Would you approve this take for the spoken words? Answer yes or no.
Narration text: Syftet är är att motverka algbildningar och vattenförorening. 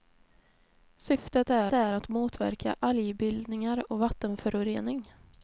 yes